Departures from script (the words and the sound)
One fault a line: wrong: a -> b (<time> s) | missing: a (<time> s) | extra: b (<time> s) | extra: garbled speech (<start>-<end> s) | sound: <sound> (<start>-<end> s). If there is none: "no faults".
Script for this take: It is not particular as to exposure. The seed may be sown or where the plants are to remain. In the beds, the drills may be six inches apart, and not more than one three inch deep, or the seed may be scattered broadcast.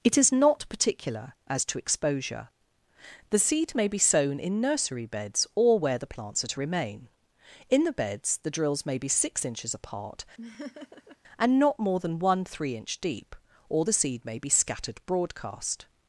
extra: in nursery beds (4.4 s)
sound: laugh (10.4-11.2 s)